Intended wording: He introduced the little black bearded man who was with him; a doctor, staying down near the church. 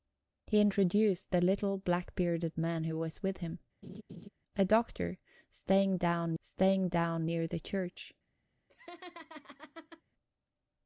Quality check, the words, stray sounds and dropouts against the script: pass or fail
fail